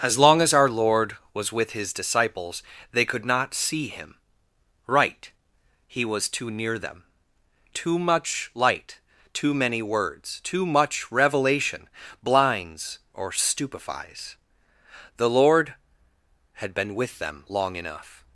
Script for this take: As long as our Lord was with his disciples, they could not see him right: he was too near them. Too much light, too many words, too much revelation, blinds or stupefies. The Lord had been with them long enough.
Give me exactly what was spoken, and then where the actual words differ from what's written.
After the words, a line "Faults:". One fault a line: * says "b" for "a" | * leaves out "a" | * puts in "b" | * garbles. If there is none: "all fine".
As long as our Lord was with his disciples, they could not see him right: he was too near them. Too much light, too many words, too much revelation, blinds or stupefies. The Lord had been with them long enough.
Faults:
all fine